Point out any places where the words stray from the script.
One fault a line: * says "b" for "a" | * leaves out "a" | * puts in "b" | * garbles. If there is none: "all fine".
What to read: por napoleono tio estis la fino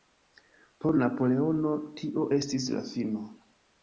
all fine